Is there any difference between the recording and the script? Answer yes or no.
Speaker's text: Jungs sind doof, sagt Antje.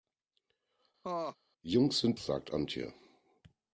yes